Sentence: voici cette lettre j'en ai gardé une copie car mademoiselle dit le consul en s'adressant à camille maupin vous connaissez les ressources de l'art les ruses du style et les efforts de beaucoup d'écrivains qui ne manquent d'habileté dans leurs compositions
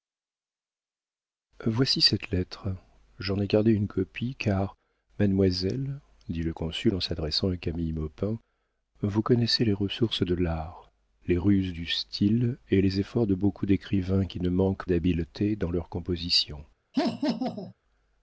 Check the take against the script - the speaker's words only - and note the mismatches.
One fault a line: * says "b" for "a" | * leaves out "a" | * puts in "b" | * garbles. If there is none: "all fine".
all fine